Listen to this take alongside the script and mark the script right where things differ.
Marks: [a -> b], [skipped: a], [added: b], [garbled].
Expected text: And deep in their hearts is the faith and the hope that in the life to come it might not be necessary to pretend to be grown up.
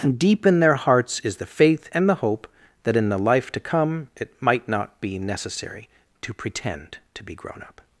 And deep in their hearts is the faith and the hope that in the life to come it might not be necessary to pretend to be grown up.